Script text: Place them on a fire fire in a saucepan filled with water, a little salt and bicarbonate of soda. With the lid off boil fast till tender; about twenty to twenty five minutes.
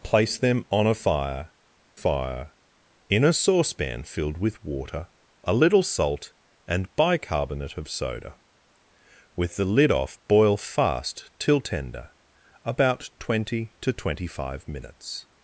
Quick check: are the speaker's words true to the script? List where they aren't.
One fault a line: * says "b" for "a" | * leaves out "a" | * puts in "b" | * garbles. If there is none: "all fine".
all fine